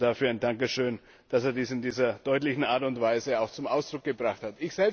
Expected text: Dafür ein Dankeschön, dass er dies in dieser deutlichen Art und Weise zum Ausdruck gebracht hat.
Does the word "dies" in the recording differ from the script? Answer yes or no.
no